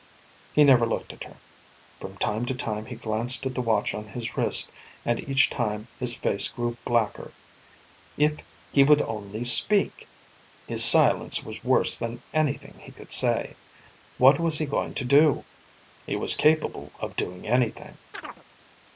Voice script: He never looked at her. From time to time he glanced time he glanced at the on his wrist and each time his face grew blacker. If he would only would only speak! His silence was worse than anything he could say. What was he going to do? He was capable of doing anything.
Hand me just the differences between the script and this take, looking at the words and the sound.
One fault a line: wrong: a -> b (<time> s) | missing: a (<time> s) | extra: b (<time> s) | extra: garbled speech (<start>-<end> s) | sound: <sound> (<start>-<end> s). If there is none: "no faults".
missing: time he glanced (3.5 s)
extra: watch (3.6 s)
missing: would only (9.4 s)
sound: chirp (18.1-18.4 s)